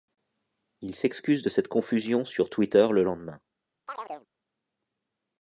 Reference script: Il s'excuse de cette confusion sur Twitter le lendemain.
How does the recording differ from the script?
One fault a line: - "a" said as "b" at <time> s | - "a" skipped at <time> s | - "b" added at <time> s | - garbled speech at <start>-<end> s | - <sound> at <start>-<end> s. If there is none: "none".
- chirp at 3.9-4.3 s